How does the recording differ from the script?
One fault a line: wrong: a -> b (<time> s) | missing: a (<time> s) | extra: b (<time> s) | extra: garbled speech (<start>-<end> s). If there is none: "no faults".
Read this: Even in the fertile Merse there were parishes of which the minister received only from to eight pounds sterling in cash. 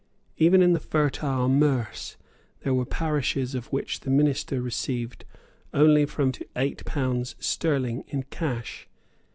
no faults